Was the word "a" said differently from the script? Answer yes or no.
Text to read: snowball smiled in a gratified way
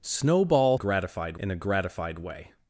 no